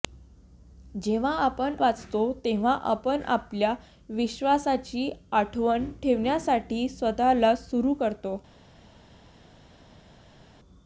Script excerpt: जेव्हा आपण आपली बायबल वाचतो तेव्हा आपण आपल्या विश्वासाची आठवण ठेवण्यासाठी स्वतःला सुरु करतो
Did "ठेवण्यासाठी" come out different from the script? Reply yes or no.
no